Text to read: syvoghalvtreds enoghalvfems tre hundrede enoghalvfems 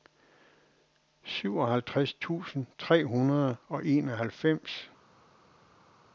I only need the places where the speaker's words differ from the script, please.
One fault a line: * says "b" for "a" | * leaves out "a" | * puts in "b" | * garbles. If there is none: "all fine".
* says "tusind" for "enoghalvfems"
* puts in "og"